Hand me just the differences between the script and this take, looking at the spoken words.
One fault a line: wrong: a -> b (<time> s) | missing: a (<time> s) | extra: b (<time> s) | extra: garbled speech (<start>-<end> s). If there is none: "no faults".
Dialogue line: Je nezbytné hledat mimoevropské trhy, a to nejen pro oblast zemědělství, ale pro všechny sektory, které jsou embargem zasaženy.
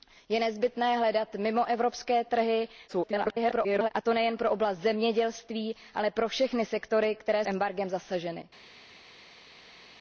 extra: garbled speech (2.9-3.9 s)
missing: jsou (7.5 s)